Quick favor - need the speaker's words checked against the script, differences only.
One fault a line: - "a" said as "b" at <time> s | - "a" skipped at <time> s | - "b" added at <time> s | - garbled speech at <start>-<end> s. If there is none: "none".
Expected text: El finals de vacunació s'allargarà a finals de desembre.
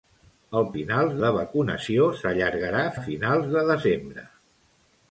none